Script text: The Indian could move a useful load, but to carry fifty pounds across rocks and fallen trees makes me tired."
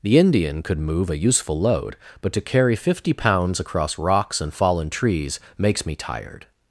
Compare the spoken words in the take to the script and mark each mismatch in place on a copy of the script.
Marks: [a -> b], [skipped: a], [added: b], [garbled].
The Indian could move a useful load, but to carry fifty pounds across rocks and fallen trees makes me tired."